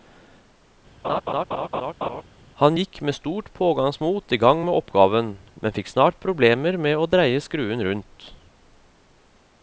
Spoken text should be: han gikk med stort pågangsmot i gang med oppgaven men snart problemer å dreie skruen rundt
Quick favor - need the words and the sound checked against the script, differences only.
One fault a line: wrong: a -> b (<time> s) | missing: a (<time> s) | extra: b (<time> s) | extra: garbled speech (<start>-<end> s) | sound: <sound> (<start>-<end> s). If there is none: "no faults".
sound: laugh (1.0-2.2 s)
extra: fikk (5.8 s)
extra: med (6.9 s)